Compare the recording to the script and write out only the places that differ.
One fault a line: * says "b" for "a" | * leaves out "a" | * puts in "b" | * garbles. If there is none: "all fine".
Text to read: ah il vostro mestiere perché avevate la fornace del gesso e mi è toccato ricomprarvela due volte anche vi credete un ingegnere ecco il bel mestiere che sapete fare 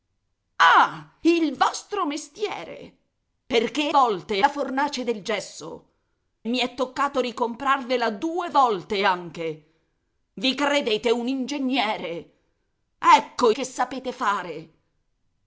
* says "volte" for "avevate"
* leaves out "e"
* leaves out "il bel mestiere"